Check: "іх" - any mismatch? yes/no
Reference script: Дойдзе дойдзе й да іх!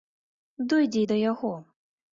yes